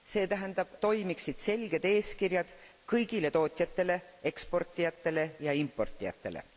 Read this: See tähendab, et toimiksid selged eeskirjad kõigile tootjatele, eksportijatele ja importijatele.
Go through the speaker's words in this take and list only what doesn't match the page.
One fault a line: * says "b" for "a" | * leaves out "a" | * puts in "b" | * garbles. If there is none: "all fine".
* leaves out "et"